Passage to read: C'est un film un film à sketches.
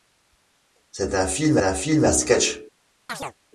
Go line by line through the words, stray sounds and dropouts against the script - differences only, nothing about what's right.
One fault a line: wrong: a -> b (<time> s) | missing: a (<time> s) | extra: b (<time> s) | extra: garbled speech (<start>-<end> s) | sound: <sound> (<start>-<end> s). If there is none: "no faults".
sound: chirp (3.1-3.3 s)